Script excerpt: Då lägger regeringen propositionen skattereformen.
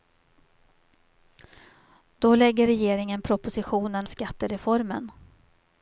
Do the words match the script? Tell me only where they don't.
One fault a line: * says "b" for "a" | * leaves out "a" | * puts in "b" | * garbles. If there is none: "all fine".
all fine